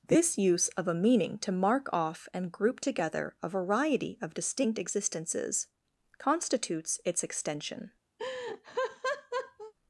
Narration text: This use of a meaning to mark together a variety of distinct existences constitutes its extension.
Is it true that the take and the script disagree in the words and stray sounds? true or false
true